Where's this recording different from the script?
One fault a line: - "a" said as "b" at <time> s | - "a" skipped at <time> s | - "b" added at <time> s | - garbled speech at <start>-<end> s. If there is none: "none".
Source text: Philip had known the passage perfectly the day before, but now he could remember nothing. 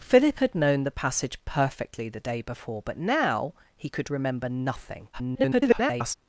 - garbled speech at 5.1-6.1 s